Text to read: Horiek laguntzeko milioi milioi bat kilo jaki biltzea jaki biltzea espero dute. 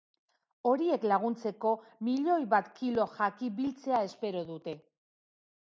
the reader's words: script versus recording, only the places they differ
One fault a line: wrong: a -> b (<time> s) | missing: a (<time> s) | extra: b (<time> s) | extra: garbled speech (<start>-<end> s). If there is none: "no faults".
missing: milioi (2.4 s)
missing: jaki biltzea (4.0 s)